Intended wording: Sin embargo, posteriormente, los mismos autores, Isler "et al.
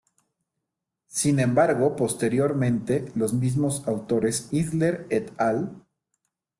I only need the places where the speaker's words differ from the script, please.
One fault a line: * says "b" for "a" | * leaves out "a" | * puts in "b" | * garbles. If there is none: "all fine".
all fine